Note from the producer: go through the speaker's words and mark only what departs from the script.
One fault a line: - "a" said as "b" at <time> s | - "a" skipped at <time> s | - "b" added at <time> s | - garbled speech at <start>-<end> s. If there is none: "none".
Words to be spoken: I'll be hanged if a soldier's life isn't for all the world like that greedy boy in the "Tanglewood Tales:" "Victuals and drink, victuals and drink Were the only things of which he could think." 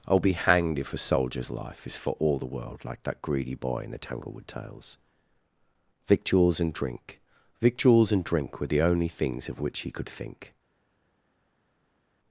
- "isn't" said as "is" at 1.9 s